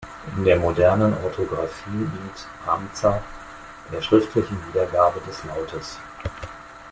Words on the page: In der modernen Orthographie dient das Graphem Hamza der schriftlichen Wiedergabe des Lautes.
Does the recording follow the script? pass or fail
fail